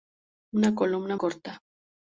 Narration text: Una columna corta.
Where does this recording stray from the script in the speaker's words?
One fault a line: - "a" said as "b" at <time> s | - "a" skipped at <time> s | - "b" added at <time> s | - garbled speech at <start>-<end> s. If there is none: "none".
none